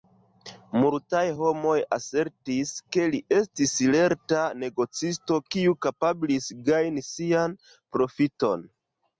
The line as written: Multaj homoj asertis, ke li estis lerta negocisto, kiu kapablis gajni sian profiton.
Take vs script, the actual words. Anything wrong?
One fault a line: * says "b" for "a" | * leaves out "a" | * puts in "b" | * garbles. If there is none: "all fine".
all fine